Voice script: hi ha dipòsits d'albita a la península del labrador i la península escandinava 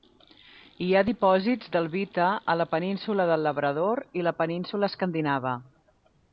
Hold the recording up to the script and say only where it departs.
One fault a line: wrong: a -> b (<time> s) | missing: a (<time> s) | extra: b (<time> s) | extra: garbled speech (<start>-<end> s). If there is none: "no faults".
no faults